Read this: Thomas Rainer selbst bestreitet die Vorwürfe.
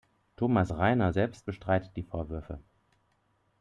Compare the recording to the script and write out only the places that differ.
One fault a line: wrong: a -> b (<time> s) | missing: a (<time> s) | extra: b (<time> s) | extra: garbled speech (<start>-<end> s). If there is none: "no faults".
no faults